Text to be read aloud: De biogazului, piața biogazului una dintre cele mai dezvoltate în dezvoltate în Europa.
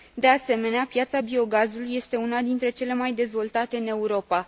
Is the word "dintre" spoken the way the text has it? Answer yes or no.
yes